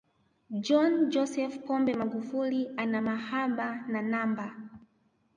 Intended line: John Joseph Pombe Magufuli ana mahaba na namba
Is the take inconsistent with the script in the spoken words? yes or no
no